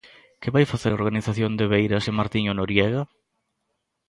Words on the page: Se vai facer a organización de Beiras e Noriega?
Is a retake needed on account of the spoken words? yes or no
yes